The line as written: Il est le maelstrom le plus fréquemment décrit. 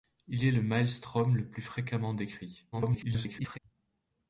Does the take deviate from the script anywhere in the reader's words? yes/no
yes